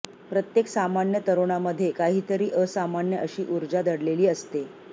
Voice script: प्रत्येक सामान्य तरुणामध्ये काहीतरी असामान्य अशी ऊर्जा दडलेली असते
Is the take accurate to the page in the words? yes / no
yes